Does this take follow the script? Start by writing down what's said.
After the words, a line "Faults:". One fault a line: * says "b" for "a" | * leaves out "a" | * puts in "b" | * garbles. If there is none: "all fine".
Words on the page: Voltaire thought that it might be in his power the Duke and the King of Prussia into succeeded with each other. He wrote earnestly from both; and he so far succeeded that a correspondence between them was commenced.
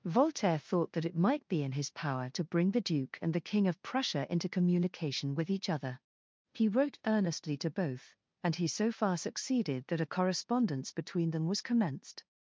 Voltaire thought that it might be in his power to bring the Duke and the King of Prussia into communication with each other. He wrote earnestly to both; and he so far succeeded that a correspondence between them was commenced.
Faults:
* puts in "to bring"
* says "communication" for "succeeded"
* says "to" for "from"